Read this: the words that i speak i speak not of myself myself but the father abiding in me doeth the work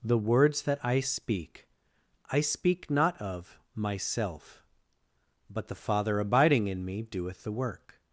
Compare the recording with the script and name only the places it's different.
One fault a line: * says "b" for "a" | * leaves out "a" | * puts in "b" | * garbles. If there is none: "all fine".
* leaves out "myself"